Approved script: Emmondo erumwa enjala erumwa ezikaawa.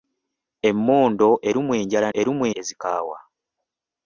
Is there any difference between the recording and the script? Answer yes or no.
no